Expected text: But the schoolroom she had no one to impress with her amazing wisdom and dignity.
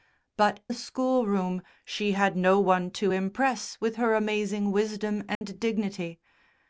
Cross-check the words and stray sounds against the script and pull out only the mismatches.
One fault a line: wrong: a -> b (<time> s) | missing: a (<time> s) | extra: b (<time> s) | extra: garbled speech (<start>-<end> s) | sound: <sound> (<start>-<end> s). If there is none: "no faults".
sound: dropout (5.3-5.4 s)